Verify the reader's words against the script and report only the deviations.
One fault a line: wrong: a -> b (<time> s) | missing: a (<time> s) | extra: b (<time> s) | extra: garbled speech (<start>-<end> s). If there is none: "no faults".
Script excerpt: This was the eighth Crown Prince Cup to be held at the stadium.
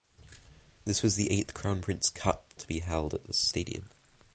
no faults